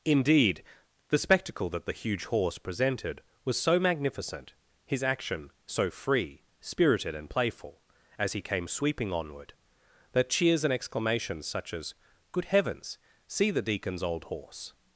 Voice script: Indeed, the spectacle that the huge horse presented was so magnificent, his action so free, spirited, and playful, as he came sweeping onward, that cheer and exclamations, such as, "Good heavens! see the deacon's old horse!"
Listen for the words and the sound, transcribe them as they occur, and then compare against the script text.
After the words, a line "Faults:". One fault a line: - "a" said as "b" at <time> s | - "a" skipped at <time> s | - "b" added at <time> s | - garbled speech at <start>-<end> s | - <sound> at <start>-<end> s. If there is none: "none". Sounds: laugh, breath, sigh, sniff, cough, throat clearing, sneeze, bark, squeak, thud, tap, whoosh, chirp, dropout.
Indeed, the spectacle that the huge horse presented was so magnificent, his action so free, spirited, and playful, as he came sweeping onward, that cheers and exclamations, such as, "Good heavens! see the deacon's old horse!"
Faults:
- "cheer" said as "cheers" at 10.3 s